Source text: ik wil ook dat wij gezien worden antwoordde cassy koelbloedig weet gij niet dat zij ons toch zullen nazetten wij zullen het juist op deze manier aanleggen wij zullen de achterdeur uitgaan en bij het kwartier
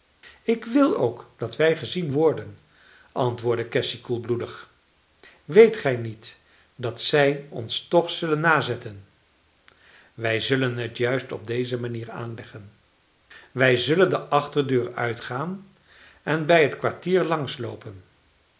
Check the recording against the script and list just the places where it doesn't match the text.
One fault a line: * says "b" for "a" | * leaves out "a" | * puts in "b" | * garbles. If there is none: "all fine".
all fine